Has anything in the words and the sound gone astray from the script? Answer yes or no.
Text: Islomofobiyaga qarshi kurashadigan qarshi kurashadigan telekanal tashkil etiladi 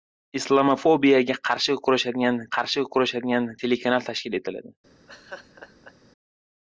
yes